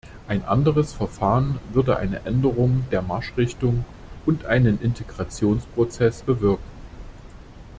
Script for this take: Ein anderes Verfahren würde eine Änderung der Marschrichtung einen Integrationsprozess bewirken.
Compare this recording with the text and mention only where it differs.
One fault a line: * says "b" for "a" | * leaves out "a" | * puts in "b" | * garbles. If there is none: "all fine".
* puts in "und"